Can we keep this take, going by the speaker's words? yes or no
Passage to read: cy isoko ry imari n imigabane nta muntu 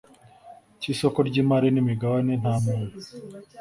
yes